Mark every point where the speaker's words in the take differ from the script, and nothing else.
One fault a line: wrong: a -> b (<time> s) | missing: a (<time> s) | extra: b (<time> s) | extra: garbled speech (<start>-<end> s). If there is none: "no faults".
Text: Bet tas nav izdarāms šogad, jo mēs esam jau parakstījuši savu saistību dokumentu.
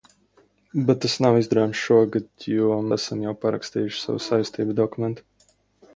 missing: mēs (2.8 s)